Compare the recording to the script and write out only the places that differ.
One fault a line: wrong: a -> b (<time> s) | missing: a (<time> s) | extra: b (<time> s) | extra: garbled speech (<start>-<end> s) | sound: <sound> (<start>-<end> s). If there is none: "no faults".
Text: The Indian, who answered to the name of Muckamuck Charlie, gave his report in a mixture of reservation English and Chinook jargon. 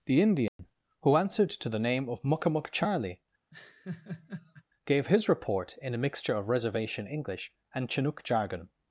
sound: dropout (0.5-0.6 s)
sound: laugh (3.5-4.6 s)